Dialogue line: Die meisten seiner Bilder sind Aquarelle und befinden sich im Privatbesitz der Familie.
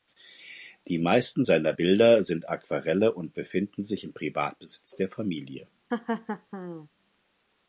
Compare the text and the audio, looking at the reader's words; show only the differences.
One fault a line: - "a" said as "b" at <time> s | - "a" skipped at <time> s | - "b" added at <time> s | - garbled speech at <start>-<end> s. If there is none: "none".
none